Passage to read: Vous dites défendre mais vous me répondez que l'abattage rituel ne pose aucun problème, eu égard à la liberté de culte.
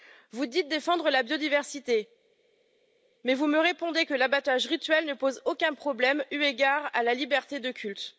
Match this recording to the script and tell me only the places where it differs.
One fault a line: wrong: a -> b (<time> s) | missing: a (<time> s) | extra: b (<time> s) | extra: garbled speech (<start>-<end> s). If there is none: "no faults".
extra: la biodiversité (1.1 s)